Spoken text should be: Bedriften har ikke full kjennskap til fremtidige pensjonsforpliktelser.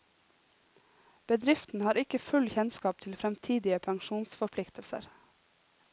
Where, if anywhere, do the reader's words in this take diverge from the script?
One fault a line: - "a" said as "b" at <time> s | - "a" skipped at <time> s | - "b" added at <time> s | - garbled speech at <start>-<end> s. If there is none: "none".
none